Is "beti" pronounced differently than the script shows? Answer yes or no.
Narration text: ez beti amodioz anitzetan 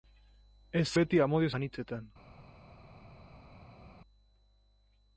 no